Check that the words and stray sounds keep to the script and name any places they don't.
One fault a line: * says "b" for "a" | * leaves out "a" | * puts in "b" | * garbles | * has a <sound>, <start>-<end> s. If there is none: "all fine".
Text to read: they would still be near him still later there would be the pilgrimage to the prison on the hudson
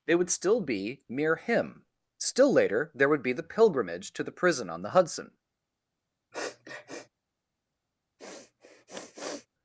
* says "mere" for "near"
* has a sniff, 6.3-7.1 s
* has a sniff, 8.2-9.5 s